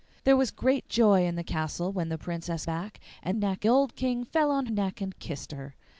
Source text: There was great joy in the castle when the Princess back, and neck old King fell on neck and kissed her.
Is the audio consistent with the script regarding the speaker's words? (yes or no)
yes